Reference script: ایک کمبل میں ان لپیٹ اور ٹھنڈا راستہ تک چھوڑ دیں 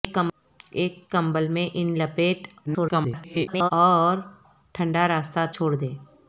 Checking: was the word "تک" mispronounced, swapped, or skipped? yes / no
yes